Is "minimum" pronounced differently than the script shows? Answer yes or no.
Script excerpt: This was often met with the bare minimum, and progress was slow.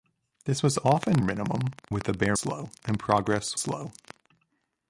yes